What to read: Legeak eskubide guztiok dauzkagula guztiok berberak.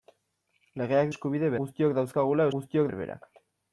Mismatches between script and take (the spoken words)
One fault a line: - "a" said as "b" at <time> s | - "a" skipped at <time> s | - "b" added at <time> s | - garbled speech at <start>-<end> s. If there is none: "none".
none